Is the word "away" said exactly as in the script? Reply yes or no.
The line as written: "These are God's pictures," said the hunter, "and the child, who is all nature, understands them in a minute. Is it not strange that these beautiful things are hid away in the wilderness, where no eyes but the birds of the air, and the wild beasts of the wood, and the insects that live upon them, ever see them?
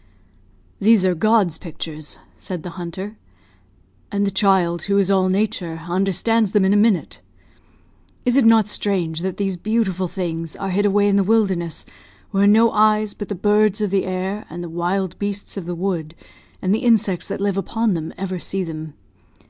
yes